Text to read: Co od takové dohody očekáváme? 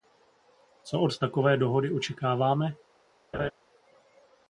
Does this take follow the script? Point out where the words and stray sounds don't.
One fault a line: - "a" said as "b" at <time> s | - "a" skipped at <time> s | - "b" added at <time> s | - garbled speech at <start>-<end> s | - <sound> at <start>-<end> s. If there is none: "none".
- laugh at 3.3-3.5 s